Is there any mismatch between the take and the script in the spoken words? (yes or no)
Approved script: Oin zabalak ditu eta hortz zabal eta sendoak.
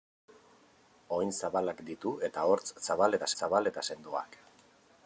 yes